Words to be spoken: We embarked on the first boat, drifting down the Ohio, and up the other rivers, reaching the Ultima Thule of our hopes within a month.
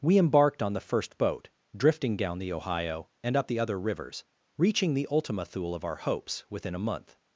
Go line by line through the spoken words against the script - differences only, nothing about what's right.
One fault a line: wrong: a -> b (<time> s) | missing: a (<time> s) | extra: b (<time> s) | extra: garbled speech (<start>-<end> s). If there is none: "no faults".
no faults